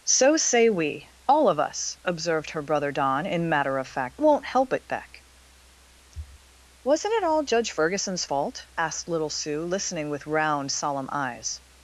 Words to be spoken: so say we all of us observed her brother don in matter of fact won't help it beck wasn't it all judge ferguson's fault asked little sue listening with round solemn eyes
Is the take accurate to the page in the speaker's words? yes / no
yes